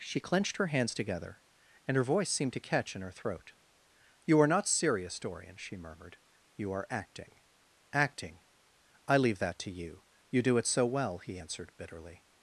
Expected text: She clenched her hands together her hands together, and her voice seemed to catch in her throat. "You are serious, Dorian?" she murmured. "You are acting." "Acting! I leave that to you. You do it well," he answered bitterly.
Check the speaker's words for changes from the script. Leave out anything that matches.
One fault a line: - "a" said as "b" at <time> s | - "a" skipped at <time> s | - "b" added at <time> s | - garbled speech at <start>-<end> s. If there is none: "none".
- "her hands together" skipped at 1.4 s
- "not" added at 4.5 s
- "so" added at 10.7 s